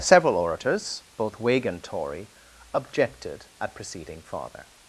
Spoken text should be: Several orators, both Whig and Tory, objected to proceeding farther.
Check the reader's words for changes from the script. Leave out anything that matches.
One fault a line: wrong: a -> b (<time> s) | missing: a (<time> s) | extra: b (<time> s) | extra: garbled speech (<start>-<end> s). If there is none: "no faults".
wrong: to -> at (3.6 s)